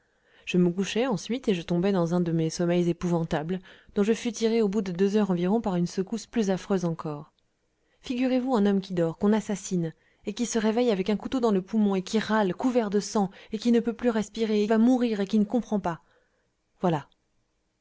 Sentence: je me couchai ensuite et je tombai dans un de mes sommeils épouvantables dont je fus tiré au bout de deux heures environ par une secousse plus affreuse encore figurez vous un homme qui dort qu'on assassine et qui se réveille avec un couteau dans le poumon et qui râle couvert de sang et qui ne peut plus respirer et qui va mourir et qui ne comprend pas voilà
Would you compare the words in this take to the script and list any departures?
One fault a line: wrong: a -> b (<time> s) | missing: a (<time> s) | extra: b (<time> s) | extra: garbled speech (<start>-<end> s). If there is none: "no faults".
missing: qui (14.7 s)